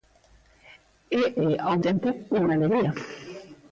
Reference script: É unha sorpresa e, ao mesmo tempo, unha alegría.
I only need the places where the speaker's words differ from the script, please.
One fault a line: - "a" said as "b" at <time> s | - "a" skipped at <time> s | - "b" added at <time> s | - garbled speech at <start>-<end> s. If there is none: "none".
- "unha sorpresa" skipped at 1.2 s
- "mesmo" skipped at 1.8 s